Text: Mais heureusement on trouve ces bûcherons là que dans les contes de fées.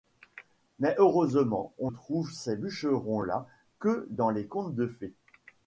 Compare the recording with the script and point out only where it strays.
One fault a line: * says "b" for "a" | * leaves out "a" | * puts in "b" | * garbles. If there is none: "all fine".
all fine